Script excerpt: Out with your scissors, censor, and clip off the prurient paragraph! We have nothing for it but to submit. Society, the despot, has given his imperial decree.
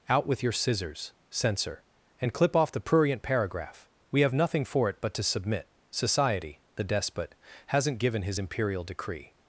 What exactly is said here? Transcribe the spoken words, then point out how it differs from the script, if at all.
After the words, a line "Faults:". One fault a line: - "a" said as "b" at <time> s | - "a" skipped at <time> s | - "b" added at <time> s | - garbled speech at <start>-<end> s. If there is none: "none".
Out with your scissors, censor, and clip off the prurient paragraph! We have nothing for it but to submit. Society, the despot, hasn't given his imperial decree.
Faults:
- "has" said as "hasn't" at 7.7 s